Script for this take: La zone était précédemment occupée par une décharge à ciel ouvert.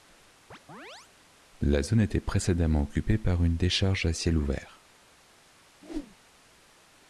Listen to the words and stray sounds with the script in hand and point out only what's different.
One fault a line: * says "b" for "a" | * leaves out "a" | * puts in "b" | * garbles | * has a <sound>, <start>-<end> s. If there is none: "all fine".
* has a chirp, 0.5-1.1 s
* has a whoosh, 5.8-6.2 s